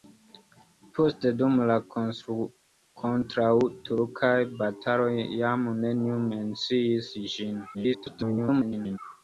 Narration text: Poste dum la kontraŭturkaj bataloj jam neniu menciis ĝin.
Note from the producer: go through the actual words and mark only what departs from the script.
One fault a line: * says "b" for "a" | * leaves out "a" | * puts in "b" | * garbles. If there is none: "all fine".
* garbles